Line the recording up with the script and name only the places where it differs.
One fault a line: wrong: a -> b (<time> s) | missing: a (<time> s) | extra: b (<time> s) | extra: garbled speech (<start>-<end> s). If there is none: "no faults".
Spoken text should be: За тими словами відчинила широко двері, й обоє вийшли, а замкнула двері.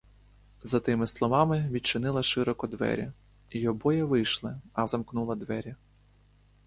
no faults